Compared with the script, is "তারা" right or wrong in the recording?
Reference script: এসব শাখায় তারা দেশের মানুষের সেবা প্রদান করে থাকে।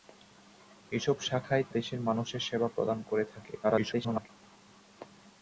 wrong